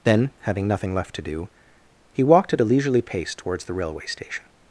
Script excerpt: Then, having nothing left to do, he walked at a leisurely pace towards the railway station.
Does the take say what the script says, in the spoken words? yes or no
yes